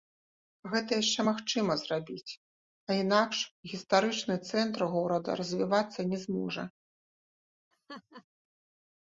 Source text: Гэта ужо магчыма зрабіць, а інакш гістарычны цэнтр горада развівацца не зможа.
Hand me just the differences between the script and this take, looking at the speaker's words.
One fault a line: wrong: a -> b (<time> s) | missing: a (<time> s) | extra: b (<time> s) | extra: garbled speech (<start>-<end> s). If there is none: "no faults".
wrong: ужо -> яшчэ (1.0 s)